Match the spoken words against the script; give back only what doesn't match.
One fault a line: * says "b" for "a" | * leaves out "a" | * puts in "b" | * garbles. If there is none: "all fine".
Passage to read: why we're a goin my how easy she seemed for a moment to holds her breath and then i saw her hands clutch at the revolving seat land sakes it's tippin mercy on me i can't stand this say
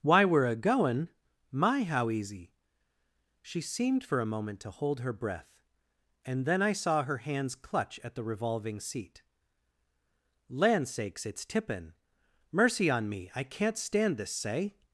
* says "hold" for "holds"